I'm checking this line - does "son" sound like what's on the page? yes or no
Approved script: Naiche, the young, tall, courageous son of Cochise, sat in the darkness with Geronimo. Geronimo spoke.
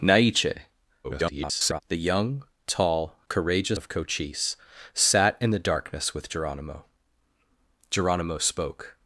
no